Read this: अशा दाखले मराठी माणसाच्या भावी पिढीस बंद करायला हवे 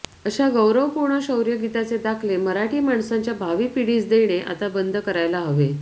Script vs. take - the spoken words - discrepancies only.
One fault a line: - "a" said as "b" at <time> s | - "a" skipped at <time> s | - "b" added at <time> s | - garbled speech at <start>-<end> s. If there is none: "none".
- "गौरवपूर्ण शौर्यगीताचे" added at 0.5 s
- "देणे आता" added at 4.1 s